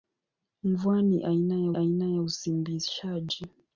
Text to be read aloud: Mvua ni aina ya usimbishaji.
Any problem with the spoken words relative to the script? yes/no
yes